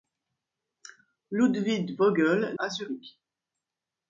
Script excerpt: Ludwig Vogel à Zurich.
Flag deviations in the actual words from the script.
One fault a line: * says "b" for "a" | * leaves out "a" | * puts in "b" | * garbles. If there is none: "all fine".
all fine